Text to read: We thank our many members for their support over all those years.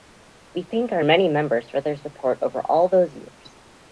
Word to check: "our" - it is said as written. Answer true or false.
true